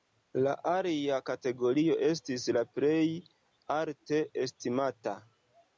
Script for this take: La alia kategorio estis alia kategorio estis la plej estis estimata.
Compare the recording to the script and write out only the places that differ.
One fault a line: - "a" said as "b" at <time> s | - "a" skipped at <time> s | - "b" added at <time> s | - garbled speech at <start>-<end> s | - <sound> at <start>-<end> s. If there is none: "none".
- "alia kategorio estis" skipped at 2.5 s
- "estis" said as "alte" at 3.8 s